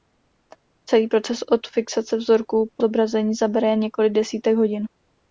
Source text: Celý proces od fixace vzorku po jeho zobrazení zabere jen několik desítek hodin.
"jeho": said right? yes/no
no